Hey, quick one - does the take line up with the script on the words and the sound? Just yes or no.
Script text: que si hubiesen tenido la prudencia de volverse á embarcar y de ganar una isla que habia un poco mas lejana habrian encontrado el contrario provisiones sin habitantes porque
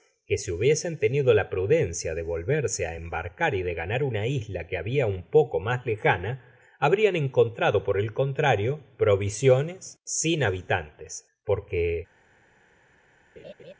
no